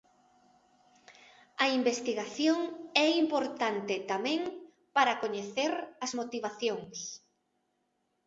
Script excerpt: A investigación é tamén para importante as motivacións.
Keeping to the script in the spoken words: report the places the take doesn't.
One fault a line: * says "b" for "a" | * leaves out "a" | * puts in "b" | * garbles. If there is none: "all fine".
* puts in "importante"
* says "coñecer" for "importante"